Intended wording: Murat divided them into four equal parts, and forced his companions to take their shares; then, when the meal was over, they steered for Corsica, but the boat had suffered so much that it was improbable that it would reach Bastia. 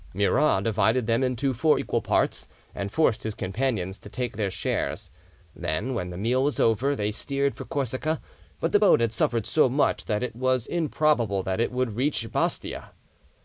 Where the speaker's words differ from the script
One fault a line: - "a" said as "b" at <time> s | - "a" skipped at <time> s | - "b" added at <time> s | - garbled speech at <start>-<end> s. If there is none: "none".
none